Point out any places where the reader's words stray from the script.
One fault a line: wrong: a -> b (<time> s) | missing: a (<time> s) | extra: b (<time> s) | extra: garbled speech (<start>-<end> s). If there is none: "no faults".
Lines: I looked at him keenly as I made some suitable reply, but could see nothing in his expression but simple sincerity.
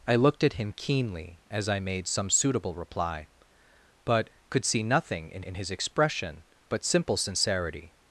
extra: in (5.4 s)